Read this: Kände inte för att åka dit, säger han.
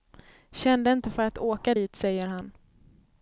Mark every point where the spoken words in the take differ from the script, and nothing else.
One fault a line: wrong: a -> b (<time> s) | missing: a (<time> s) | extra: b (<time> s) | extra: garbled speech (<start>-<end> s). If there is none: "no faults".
no faults